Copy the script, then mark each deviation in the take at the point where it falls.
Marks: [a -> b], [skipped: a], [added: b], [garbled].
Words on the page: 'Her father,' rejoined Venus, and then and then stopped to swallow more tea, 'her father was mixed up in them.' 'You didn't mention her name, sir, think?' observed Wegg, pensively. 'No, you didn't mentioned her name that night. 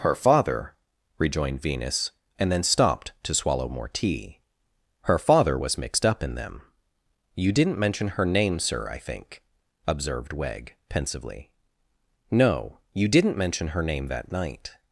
'Her father,' rejoined Venus, and then [skipped: and then] stopped to swallow more tea, 'her father was mixed up in them.' 'You didn't mention her name, sir, [added: I] think?' observed Wegg, pensively. 'No, you didn't [mentioned -> mention] her name that night.